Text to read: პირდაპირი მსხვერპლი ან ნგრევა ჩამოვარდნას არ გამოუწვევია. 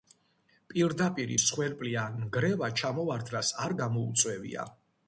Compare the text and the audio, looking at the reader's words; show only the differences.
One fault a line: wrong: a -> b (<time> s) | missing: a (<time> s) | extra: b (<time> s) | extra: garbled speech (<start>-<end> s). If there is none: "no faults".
no faults